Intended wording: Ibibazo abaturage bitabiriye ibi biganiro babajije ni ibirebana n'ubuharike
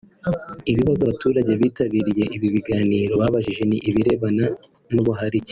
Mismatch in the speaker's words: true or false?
false